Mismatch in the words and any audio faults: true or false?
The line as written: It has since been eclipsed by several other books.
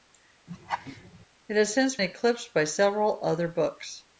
true